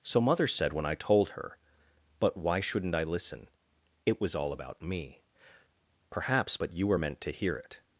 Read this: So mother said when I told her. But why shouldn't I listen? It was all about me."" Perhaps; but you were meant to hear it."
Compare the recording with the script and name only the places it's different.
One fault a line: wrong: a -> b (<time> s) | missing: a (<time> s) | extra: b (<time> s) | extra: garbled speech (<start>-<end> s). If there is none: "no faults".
no faults